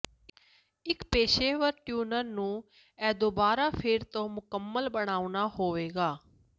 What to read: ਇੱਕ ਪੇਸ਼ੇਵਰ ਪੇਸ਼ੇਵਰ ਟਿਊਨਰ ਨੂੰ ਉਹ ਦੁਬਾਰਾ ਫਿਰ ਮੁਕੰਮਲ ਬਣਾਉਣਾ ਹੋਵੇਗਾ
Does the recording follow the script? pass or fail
fail